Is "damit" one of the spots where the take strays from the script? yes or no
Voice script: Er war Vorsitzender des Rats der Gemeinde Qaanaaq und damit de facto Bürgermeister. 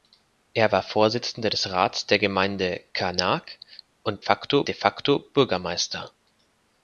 yes